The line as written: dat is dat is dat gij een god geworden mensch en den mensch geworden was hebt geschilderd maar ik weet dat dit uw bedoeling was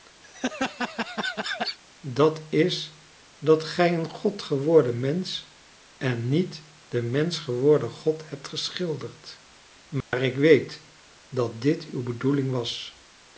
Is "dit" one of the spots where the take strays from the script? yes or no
no